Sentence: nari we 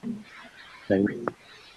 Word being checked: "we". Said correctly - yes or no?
yes